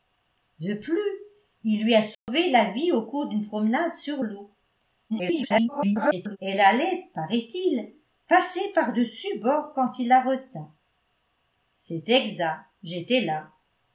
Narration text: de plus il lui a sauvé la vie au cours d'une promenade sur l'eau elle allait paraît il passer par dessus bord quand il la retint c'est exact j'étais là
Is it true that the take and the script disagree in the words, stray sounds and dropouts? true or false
true